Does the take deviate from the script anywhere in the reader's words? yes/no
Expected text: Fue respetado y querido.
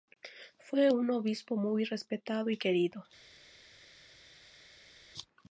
yes